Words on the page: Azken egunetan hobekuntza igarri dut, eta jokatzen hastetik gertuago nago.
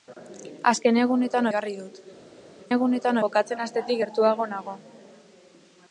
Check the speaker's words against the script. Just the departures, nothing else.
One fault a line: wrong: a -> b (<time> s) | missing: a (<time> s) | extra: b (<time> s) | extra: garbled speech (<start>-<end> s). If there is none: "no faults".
missing: hobekuntza (1.5 s)
wrong: eta -> egunetan (2.7 s)